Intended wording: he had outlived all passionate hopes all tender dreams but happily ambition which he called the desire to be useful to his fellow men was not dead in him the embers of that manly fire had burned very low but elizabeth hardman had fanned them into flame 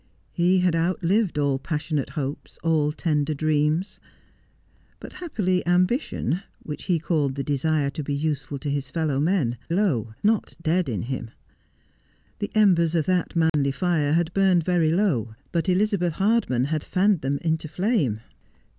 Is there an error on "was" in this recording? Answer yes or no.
yes